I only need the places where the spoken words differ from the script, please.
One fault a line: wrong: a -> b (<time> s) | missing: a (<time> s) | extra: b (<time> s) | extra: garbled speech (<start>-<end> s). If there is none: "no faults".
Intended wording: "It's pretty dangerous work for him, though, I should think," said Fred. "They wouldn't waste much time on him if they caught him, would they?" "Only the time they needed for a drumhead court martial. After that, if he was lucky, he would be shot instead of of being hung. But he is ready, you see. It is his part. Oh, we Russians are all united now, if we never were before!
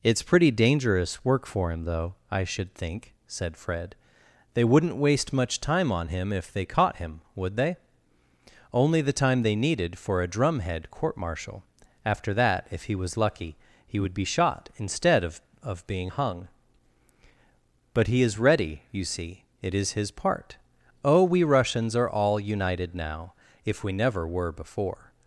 no faults